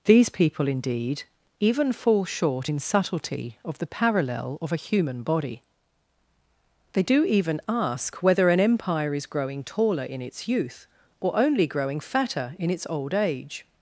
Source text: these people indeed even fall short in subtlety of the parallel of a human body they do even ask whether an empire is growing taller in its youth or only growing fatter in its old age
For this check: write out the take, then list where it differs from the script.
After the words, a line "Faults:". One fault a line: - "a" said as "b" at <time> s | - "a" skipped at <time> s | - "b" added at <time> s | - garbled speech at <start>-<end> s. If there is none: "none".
these people indeed even fall short in subtlety of the parallel of a human body they do even ask whether an empire is growing taller in its youth or only growing fatter in its old age
Faults:
none